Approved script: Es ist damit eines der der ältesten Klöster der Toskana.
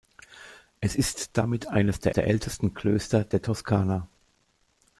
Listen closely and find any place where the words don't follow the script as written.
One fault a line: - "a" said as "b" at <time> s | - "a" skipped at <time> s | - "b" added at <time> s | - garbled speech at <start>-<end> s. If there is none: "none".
none